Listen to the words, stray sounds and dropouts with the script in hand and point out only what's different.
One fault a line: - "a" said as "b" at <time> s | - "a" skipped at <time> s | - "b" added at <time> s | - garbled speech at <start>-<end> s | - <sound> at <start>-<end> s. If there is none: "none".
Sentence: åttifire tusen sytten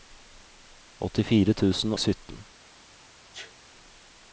- sneeze at 3.3-3.5 s